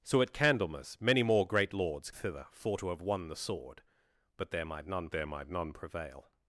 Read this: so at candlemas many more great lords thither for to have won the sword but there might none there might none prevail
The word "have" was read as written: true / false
true